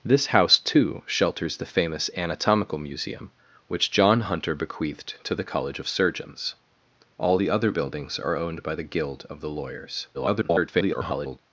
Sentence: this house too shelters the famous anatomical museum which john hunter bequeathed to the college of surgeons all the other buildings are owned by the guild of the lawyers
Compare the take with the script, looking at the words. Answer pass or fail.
fail